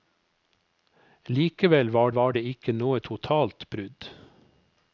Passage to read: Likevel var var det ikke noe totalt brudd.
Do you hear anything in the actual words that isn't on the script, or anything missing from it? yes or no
no